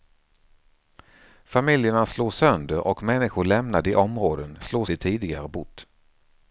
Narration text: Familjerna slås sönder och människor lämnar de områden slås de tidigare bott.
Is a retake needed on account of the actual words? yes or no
no